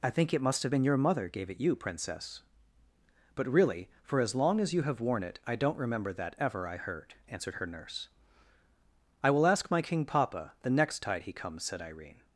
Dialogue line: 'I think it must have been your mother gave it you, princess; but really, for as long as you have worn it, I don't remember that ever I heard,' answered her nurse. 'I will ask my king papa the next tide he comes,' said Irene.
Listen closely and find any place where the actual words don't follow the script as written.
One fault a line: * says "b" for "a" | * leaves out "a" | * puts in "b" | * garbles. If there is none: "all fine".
all fine